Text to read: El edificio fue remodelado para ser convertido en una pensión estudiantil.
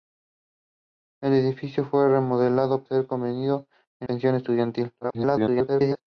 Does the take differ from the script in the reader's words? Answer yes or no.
yes